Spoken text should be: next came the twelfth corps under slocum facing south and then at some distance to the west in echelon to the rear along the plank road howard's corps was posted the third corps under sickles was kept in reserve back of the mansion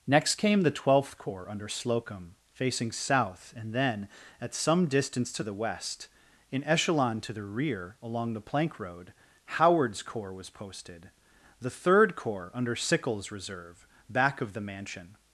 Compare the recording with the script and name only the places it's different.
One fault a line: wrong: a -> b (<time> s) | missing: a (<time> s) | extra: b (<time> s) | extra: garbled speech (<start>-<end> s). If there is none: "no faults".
missing: was kept in (13.3 s)